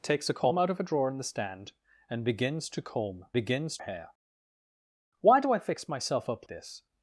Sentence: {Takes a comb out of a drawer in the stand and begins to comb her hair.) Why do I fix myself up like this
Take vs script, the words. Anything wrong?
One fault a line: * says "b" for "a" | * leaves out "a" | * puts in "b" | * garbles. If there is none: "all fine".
* says "begins" for "her"
* leaves out "like"